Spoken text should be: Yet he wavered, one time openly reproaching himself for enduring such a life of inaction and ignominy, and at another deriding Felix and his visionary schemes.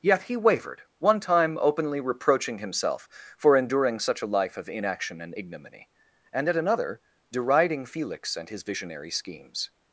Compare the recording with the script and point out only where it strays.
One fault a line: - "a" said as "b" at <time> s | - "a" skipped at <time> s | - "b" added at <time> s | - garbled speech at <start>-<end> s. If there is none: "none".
none